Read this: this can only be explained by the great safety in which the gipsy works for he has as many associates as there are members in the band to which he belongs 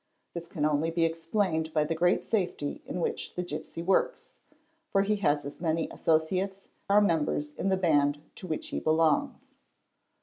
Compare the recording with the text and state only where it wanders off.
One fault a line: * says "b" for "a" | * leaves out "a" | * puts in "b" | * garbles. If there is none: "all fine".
* leaves out "as there"